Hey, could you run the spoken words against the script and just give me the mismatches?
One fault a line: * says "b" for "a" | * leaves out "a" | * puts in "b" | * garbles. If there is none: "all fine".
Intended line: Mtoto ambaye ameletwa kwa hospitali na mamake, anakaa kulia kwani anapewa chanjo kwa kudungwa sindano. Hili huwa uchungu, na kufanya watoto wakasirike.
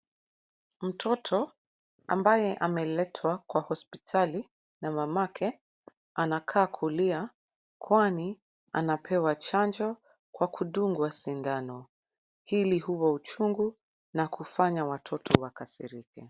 all fine